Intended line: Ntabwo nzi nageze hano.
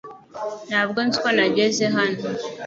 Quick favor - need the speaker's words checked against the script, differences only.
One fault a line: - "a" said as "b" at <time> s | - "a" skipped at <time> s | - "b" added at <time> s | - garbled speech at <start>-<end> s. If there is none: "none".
- "uko" added at 1.2 s